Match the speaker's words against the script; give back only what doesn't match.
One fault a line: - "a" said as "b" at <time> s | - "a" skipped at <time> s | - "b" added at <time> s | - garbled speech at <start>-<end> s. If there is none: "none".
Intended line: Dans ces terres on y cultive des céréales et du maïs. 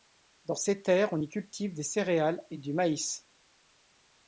none